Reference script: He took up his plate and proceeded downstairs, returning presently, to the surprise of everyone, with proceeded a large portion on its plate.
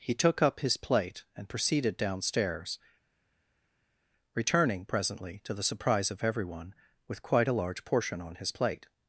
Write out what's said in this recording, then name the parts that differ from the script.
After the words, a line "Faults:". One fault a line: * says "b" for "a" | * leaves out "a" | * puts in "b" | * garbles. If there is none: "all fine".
He took up his plate and proceeded downstairs, returning presently, to the surprise of everyone, with quite a large portion on his plate.
Faults:
* says "quite" for "proceeded"
* says "his" for "its"